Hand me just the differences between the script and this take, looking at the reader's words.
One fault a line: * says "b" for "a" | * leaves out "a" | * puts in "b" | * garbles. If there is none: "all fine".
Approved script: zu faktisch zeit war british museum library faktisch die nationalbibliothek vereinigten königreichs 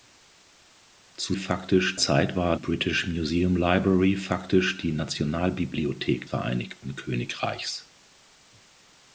all fine